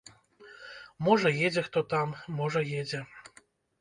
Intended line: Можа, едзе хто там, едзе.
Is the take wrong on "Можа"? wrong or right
right